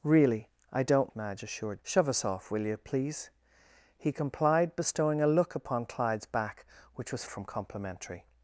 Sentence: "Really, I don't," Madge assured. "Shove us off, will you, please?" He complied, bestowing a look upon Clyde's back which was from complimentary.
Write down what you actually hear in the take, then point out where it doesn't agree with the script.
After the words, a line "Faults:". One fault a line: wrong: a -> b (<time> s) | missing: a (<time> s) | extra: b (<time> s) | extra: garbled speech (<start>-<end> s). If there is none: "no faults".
"Really, I don't," Madge assured. "Shove us off, will you, please?" He complied, bestowing a look upon Clyde's back which was from complimentary.
Faults:
no faults